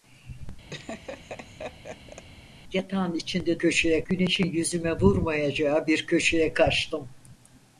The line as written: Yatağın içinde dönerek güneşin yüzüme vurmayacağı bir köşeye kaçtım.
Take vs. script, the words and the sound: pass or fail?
fail